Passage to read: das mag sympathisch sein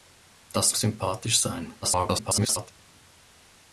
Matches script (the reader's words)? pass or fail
fail